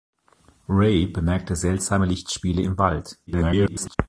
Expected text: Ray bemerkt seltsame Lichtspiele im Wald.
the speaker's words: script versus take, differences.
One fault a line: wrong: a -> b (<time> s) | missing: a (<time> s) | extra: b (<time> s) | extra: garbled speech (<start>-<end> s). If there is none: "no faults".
extra: garbled speech (3.3-4.0 s)